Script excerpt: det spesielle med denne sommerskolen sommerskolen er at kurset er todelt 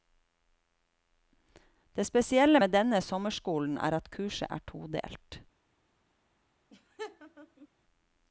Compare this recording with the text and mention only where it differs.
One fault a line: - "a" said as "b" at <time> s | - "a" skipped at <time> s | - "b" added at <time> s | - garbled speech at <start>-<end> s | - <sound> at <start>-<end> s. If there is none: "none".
- "sommerskolen" skipped at 3.8 s
- laugh at 6.7-7.7 s